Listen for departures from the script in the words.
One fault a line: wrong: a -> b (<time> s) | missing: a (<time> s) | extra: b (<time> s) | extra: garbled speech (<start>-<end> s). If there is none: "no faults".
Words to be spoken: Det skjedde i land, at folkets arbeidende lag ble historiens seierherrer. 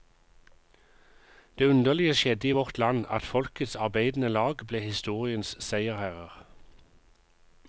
extra: underlige (1.6 s)
extra: vårt (2.5 s)